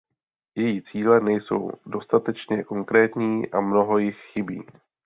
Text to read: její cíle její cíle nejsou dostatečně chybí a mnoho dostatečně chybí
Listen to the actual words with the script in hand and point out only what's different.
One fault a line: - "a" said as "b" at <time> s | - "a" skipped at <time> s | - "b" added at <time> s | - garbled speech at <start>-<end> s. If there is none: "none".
- "její cíle" skipped at 1.2 s
- "chybí" said as "konkrétní" at 2.6 s
- "dostatečně" said as "jich" at 4.0 s